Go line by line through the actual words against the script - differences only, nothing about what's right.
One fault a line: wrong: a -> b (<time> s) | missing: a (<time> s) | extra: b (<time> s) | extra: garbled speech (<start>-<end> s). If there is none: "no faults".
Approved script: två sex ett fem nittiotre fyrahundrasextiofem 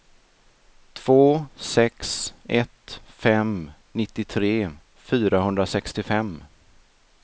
no faults